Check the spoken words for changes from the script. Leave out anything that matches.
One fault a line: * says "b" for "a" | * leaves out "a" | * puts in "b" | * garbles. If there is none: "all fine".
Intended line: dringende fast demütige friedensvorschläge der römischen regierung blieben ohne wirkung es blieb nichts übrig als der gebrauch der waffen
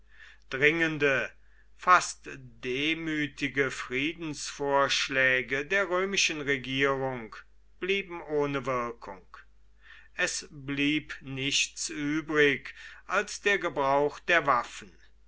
all fine